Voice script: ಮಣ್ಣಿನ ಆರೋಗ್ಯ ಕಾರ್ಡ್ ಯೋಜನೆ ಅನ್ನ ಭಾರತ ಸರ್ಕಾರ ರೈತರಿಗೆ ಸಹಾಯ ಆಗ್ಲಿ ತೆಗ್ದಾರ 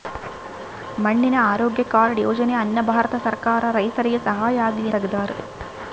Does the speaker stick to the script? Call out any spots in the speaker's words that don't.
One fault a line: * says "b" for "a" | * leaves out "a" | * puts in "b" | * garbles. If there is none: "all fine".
all fine